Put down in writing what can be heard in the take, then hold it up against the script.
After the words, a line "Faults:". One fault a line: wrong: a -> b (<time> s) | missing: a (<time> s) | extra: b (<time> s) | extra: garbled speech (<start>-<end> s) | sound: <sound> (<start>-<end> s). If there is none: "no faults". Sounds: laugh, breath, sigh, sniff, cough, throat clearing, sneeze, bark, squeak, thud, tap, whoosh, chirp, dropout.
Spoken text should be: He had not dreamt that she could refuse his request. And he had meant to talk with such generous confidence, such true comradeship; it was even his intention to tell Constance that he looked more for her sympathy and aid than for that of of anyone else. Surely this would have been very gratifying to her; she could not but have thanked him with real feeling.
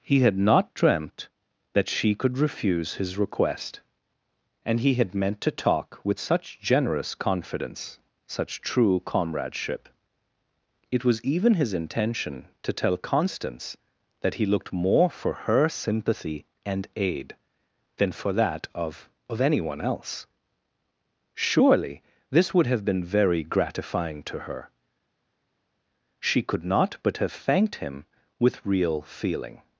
He had not dreamt that she could refuse his request. And he had meant to talk with such generous confidence, such true comradeship; it was even his intention to tell Constance that he looked more for her sympathy and aid than for that of of anyone else. Surely this would have been very gratifying to her; she could not but have thanked him with real feeling.
Faults:
no faults